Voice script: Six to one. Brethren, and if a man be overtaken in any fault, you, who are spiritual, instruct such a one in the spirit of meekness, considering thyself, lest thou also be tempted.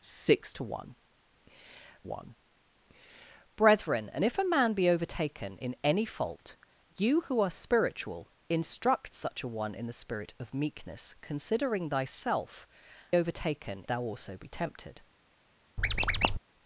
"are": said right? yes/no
yes